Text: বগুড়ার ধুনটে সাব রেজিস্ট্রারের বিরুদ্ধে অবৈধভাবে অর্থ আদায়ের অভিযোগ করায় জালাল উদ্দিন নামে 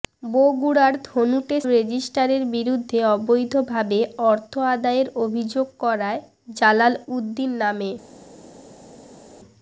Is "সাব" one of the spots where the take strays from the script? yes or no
yes